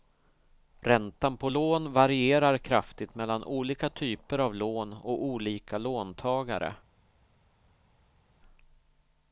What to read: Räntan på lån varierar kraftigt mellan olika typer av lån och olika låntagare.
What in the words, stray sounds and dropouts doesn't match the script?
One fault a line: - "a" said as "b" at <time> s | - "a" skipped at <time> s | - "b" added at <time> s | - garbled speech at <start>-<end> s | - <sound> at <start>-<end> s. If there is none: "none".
none